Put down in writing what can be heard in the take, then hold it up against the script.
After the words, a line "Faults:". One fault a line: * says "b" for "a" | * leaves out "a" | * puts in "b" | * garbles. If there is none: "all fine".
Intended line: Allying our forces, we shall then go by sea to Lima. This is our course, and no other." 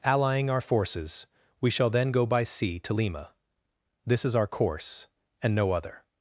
Allying our forces, we shall then go by sea to Lima. This is our course, and no other."
Faults:
all fine